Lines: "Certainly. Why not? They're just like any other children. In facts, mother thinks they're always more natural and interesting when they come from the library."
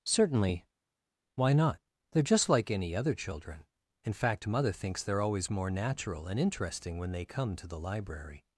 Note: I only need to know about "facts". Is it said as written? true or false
false